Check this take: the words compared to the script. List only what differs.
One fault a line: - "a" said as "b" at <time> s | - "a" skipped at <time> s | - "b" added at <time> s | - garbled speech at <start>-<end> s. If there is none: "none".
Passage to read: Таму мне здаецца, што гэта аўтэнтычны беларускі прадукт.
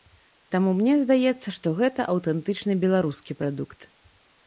none